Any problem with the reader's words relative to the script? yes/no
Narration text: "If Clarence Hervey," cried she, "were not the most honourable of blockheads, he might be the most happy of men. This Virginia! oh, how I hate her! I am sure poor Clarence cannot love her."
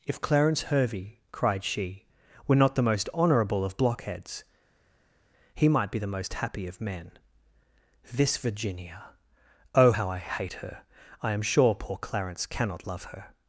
no